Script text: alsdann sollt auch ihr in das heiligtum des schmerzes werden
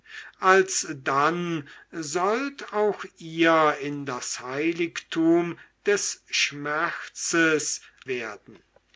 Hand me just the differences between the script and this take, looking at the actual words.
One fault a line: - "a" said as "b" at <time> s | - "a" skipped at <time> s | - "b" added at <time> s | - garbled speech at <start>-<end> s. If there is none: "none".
none